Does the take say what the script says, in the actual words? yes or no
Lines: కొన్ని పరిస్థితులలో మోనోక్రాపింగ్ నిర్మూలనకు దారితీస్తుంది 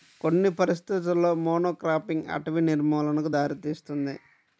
no